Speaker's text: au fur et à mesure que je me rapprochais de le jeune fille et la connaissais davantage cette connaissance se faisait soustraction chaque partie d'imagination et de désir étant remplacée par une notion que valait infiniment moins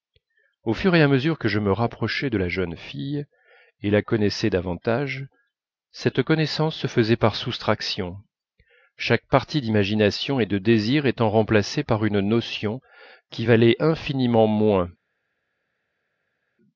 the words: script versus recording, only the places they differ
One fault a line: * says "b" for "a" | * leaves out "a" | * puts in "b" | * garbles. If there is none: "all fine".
* says "la" for "le"
* puts in "par"
* says "qui" for "que"